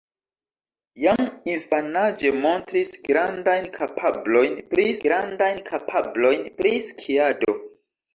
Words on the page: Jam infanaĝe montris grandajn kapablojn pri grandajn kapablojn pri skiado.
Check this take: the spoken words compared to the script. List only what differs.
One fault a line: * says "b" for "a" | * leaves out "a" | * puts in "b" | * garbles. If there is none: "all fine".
all fine